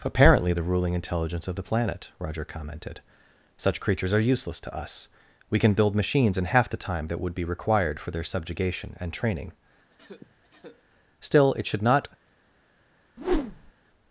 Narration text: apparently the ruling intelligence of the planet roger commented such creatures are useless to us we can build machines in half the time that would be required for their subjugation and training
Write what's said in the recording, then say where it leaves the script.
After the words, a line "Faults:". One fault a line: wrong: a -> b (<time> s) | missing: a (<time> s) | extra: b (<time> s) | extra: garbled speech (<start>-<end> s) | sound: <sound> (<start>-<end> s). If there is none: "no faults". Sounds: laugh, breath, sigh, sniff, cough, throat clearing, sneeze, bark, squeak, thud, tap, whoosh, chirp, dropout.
apparently the ruling intelligence of the planet roger commented such creatures are useless to us we can build machines in half the time that would be required for their subjugation and training still it should not
Faults:
sound: cough (9.9-10.8 s)
extra: still it should not (11.2 s)
sound: whoosh (13.2-13.7 s)